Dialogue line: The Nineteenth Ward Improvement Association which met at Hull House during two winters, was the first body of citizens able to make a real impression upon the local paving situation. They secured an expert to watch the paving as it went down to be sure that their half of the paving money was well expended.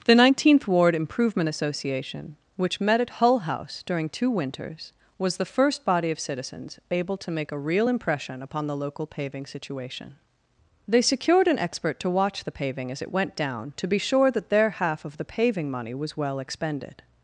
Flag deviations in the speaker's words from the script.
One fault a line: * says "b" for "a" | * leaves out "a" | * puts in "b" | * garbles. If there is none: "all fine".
all fine